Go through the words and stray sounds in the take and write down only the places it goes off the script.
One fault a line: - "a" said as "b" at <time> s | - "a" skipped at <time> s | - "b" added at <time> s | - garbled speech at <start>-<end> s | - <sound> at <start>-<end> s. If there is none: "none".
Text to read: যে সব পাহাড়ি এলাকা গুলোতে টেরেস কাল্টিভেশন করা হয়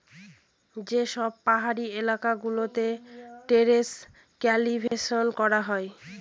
- dropout at 4.9-4.9 s